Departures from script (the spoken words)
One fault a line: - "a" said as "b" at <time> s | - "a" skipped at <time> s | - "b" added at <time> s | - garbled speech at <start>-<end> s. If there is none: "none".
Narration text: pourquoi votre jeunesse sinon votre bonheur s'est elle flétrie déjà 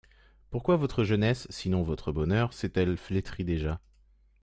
none